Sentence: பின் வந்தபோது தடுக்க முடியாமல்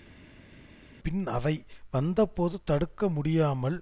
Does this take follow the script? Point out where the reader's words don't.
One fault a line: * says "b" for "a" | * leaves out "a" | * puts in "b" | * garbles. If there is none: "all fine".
* puts in "அவை"